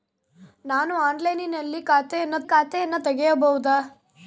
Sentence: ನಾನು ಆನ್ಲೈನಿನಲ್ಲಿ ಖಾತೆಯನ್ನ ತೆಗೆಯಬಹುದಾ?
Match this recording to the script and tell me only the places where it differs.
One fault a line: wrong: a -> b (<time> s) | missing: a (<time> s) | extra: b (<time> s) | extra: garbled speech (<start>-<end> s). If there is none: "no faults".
extra: ಖಾತೆಯನ್ನ (2.4 s)